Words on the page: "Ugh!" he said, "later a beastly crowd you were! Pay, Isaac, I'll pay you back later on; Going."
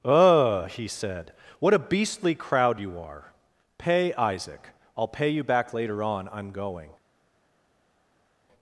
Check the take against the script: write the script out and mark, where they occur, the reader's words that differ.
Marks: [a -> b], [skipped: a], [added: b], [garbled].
"Ugh!" he said, ["later -> what] a beastly crowd you [were! -> are] Pay, Isaac, I'll pay you back later on; [added: I'm] Going."